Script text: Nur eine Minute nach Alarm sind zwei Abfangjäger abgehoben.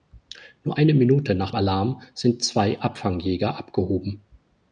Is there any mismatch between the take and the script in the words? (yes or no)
no